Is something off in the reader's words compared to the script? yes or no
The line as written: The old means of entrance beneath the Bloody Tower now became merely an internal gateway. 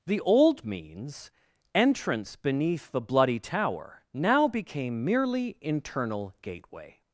yes